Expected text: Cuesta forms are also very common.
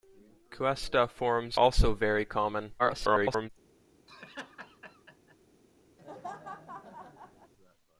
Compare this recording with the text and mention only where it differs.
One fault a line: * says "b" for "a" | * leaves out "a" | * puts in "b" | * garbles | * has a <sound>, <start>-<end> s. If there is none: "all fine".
* leaves out "are"
* garbles
* has a laugh, 4.1-5.4 s
* has a laugh, 6.0-7.5 s